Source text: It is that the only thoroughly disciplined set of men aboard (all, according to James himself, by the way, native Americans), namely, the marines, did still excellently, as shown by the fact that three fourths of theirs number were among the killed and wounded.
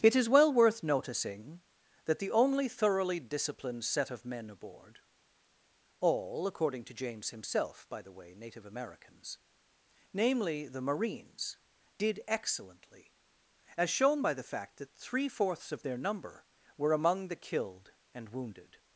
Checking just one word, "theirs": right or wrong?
wrong